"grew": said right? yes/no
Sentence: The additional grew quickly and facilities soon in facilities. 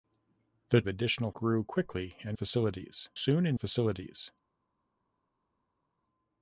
yes